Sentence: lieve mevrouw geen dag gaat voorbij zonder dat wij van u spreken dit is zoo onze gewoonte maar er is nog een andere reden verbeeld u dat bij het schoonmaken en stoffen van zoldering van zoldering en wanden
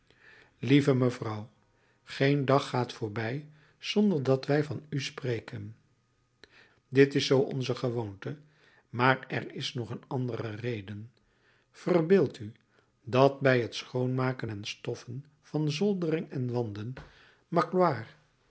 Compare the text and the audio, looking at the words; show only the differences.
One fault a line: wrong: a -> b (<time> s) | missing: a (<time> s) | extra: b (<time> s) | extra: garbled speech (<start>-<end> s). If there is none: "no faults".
missing: van zoldering (16.3 s)